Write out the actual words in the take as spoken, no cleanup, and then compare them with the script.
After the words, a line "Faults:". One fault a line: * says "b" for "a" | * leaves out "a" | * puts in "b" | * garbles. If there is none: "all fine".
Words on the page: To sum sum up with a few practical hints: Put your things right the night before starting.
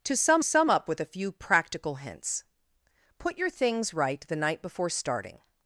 To sum sum up with a few practical hints: Put your things right the night before starting.
Faults:
all fine